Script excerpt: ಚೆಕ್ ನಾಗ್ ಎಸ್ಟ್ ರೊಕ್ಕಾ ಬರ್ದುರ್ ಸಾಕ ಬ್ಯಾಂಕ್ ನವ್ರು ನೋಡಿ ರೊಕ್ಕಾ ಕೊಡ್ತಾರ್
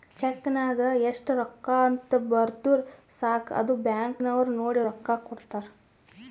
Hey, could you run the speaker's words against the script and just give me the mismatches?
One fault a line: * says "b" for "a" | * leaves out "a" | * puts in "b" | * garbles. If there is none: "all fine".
* puts in "ಅಂತ್"
* puts in "ಅದು"